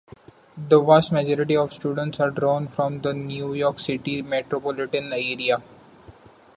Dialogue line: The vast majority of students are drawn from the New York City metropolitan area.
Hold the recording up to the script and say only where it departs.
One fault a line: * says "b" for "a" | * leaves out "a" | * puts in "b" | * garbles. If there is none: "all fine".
all fine